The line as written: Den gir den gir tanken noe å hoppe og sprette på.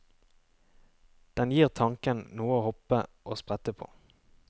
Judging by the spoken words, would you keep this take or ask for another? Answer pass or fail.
fail